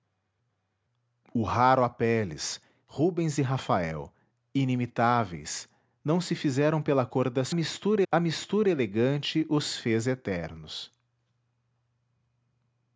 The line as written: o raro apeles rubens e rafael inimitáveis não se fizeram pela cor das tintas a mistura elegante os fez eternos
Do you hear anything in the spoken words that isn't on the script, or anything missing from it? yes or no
yes